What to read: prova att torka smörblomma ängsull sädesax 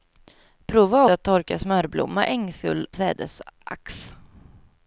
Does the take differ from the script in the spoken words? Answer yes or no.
no